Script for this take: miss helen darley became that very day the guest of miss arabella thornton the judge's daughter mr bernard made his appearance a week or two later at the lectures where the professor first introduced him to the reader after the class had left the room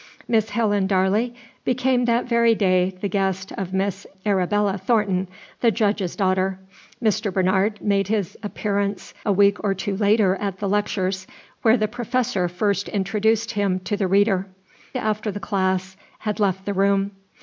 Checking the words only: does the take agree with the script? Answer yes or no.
yes